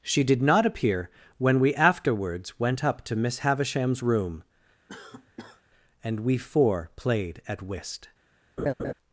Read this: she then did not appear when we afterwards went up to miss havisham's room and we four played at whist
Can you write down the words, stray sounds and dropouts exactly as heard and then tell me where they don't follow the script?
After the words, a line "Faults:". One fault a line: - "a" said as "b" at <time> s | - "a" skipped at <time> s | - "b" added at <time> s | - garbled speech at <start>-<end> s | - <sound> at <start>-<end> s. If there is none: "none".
she did not appear when we afterwards went up to miss havisham's room and we four played at whist
Faults:
- "then" skipped at 0.2 s
- cough at 4.9-5.6 s
- laugh at 8.6-8.9 s